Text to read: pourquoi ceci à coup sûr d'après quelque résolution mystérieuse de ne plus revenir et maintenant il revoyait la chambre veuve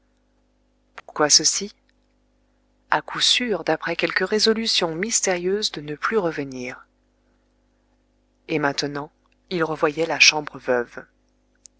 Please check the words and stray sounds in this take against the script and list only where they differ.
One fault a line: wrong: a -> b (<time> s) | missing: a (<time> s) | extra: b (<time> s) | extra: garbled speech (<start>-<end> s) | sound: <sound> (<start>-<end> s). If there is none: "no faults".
sound: dropout (1.0-1.1 s)